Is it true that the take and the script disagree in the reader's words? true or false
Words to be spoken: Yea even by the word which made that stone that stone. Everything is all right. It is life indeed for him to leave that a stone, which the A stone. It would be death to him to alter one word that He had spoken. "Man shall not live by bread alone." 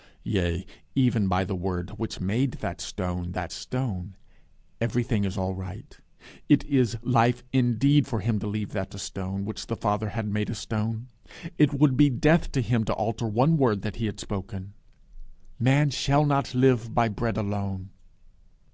true